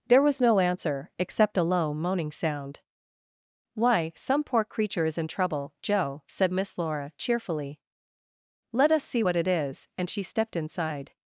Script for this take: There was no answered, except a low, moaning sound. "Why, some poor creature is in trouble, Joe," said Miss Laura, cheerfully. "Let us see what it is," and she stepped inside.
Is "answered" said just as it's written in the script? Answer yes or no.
no